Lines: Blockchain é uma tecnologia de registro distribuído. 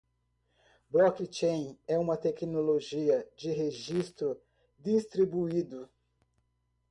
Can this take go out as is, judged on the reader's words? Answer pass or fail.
pass